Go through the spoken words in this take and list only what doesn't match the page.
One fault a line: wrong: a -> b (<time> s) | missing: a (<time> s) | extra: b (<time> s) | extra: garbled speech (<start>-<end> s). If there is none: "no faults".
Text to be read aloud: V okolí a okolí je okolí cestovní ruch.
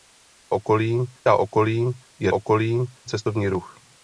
no faults